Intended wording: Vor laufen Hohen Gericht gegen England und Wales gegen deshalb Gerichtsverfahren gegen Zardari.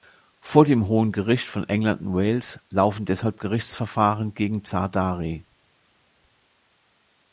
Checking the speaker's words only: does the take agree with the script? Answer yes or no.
no